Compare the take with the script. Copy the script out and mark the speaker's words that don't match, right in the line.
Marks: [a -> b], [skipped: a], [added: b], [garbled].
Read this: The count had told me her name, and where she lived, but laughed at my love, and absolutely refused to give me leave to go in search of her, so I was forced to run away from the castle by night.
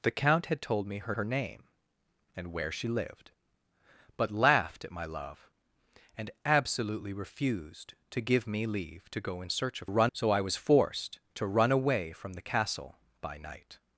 The count had told me her [added: her] name, and where she lived, but laughed at my love, and absolutely refused to give me leave to go in search of [her, -> run] so I was forced to run away from the castle by night.